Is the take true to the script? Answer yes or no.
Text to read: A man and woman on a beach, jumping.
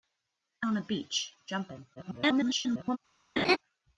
no